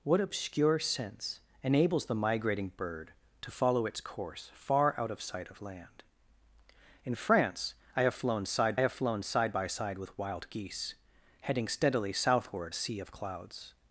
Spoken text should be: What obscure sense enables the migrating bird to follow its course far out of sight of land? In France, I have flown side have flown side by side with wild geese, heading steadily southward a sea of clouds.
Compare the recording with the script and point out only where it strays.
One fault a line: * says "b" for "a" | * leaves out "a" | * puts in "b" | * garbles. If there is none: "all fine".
all fine